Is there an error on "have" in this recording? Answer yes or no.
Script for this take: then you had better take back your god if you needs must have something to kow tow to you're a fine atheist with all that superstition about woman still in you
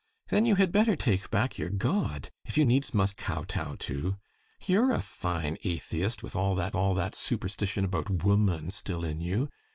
yes